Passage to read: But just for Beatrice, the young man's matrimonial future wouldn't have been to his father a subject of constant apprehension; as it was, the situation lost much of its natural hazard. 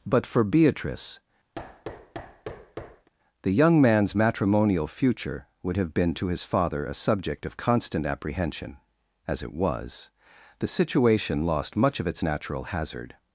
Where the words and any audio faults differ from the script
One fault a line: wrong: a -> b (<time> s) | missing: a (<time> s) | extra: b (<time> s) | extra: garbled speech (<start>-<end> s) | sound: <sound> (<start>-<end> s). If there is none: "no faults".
missing: just (0.3 s)
sound: thud (1.5-3.1 s)
wrong: wouldn't -> would (5.6 s)